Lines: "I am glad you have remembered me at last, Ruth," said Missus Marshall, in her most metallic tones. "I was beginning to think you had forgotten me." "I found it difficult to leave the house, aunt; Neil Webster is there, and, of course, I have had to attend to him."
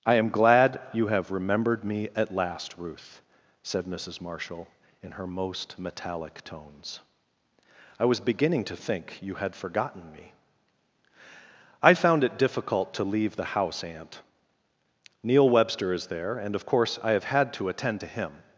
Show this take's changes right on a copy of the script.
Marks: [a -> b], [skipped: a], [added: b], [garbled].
"I am glad you have remembered me at last, Ruth," said Missus Marshall, in her most metallic tones. "I was beginning to think you had forgotten me." "I found it difficult to leave the house, aunt; Neil Webster is there, and, of course, I have had to attend to him."